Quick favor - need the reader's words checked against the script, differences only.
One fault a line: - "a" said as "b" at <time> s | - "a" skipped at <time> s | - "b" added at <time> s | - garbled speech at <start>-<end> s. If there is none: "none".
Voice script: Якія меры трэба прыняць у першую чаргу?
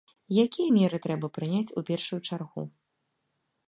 none